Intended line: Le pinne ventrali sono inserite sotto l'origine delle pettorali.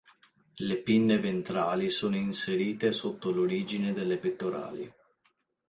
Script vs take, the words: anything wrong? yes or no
no